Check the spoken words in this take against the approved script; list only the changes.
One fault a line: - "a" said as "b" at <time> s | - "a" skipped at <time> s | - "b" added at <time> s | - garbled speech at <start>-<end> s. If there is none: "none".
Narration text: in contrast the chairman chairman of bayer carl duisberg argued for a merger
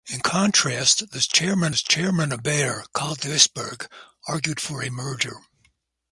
none